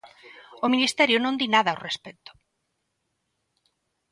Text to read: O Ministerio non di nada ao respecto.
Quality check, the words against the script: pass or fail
pass